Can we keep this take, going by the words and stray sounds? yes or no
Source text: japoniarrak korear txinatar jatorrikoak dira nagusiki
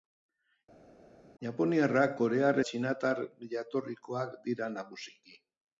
yes